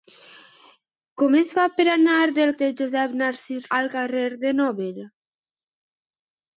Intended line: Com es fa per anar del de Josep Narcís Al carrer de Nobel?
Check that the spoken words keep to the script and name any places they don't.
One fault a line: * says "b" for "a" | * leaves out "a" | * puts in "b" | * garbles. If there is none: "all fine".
all fine